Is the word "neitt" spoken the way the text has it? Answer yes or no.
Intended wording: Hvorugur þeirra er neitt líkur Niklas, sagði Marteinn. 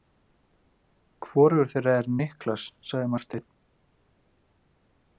no